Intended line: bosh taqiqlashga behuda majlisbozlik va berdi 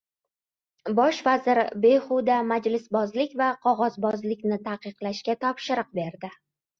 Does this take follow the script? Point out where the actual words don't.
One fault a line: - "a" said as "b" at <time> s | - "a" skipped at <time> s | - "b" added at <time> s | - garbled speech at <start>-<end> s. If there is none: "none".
- "taqiqlashga" said as "vazir" at 1.2 s
- "qog‘ozbozlikni taqiqlashga topshiriq" added at 3.6 s